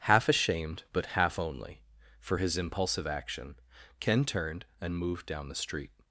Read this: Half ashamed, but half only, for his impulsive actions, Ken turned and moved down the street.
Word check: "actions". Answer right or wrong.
wrong